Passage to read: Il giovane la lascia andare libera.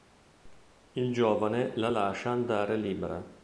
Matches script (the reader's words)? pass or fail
pass